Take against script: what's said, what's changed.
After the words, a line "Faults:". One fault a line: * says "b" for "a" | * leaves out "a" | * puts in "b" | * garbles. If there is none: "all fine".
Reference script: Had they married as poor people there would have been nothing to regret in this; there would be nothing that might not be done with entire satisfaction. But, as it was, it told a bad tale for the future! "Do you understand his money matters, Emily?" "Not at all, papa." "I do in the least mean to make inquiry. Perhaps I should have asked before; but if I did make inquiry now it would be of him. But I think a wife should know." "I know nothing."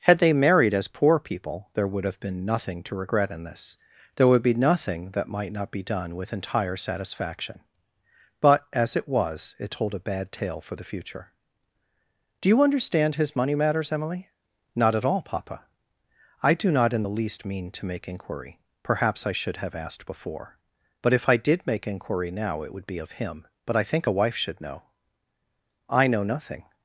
Had they married as poor people there would have been nothing to regret in this; there would be nothing that might not be done with entire satisfaction. But, as it was, it told a bad tale for the future! "Do you understand his money matters, Emily?" "Not at all, papa." "I do not in the least mean to make inquiry. Perhaps I should have asked before; but if I did make inquiry now it would be of him. But I think a wife should know." "I know nothing."
Faults:
* puts in "not"